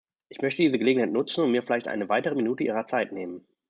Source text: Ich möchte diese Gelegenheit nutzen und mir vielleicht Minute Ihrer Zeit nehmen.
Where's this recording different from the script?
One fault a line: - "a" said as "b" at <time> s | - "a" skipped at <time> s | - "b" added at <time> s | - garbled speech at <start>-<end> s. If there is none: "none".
- "eine weitere" added at 1.9 s